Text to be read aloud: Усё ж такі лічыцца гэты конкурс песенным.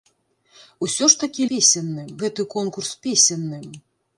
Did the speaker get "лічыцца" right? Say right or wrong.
wrong